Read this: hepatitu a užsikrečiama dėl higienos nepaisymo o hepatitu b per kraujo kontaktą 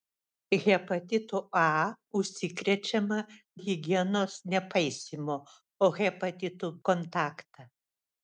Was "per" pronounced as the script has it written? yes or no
no